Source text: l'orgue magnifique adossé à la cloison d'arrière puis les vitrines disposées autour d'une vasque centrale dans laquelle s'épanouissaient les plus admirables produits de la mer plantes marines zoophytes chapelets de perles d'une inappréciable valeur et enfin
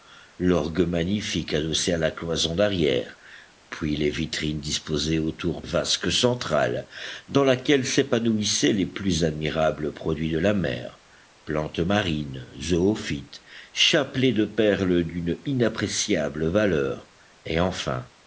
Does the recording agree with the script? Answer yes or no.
no